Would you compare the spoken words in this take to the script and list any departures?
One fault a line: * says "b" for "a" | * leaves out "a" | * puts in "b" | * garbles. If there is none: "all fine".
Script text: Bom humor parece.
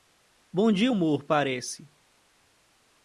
* puts in "dia"